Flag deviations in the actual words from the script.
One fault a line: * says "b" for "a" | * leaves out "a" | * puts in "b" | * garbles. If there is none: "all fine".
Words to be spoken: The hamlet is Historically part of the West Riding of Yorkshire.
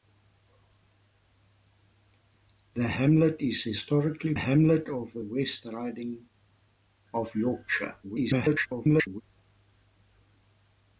* says "hamlet" for "part"
* garbles